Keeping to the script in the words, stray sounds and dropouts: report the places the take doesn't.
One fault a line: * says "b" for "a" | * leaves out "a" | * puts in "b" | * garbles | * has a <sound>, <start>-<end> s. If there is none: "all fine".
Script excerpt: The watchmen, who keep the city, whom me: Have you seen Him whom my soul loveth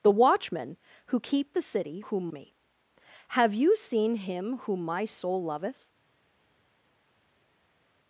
all fine